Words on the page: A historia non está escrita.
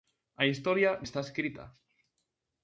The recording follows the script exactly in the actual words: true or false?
false